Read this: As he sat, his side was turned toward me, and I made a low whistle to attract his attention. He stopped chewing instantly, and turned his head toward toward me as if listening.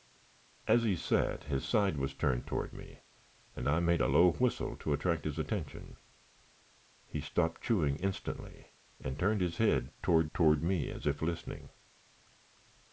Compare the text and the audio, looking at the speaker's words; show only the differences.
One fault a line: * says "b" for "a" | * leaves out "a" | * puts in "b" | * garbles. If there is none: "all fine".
all fine